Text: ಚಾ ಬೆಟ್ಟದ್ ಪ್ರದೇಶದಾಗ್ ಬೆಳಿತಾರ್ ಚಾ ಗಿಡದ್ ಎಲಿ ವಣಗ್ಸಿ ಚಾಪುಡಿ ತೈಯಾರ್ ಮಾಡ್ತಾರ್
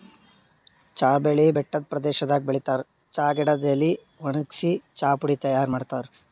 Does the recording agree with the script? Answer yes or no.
no